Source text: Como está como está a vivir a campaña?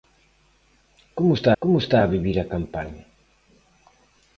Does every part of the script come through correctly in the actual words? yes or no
yes